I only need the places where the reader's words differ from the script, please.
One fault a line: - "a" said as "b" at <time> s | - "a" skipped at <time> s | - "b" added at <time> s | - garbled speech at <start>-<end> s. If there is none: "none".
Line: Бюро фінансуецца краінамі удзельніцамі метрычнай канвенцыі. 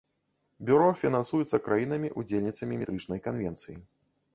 none